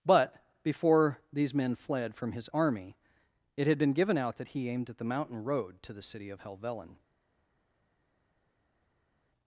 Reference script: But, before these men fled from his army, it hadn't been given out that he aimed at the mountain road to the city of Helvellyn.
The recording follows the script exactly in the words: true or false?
false